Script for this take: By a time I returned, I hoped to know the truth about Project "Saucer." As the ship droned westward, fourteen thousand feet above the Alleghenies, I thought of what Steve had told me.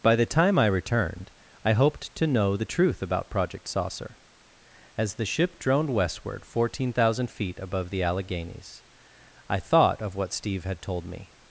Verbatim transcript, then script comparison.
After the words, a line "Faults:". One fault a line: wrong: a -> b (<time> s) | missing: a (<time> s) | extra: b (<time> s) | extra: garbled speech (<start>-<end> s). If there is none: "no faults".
By the time I returned, I hoped to know the truth about Project "Saucer." As the ship droned westward, fourteen thousand feet above the Alleghenies, I thought of what Steve had told me.
Faults:
wrong: a -> the (0.1 s)